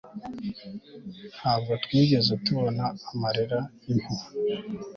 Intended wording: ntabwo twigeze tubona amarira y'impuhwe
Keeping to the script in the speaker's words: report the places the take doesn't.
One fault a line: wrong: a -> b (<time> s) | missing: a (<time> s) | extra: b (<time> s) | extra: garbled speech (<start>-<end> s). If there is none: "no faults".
no faults